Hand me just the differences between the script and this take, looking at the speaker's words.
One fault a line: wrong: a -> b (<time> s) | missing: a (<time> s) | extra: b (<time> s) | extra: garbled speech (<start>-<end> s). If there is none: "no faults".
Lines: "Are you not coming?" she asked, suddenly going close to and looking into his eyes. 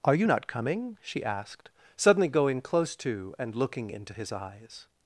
no faults